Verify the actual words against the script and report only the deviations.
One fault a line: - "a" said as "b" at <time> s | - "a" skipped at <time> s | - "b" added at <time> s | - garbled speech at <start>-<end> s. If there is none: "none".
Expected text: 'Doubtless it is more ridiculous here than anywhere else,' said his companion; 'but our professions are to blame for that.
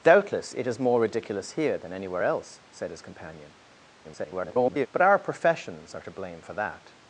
- garbled speech at 4.0-4.9 s